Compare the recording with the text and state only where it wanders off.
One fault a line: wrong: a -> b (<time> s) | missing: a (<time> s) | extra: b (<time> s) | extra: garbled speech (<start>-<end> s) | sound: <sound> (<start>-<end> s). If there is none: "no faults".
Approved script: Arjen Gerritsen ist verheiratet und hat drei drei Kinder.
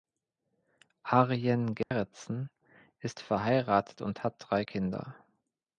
sound: dropout (1.8-1.9 s)
missing: drei (4.6 s)